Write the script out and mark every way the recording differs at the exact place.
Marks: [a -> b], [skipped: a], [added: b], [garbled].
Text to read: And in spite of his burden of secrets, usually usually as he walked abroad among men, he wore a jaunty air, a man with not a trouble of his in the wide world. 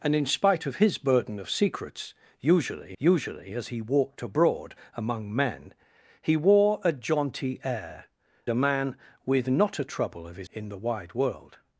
And in spite of his burden of secrets, usually usually as he walked abroad among men, he wore a jaunty air, a man with not a trouble of his in the wide world.